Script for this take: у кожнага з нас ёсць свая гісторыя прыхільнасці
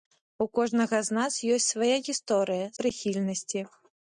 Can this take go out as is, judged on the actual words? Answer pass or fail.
pass